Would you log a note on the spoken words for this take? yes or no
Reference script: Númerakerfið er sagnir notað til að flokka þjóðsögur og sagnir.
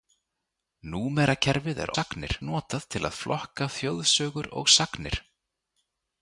no